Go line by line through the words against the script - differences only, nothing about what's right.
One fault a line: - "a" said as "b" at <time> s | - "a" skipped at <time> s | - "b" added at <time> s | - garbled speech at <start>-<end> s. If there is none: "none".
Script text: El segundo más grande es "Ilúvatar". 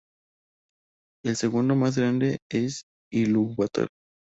none